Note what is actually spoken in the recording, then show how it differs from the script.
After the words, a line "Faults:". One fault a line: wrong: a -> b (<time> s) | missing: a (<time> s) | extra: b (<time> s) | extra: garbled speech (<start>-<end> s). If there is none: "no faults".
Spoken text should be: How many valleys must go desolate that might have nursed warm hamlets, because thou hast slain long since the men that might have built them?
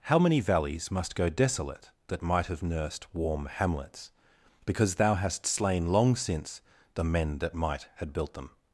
How many valleys must go desolate that might have nursed warm hamlets, because thou hast slain long since the men that might had built them?
Faults:
wrong: have -> had (8.0 s)